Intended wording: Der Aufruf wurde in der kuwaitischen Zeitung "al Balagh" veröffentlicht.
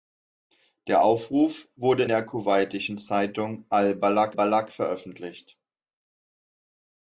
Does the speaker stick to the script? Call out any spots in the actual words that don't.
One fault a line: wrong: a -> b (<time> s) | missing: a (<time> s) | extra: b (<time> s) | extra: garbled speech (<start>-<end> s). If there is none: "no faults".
missing: in (2.0 s)
extra: Balagh (4.3 s)